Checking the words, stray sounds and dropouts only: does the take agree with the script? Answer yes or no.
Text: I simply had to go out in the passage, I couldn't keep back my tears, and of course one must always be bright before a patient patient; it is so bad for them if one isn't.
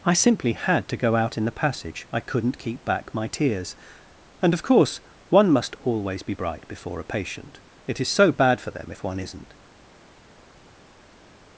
no